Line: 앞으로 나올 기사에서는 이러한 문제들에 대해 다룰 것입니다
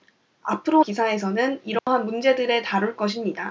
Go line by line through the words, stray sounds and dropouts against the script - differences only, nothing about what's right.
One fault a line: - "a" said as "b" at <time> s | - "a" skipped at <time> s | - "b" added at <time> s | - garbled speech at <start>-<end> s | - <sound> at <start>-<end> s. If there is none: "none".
- "나올" skipped at 0.8 s
- dropout at 1.8-1.9 s
- "대해" skipped at 2.6 s